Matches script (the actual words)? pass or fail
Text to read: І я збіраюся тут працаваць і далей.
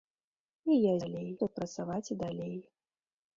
fail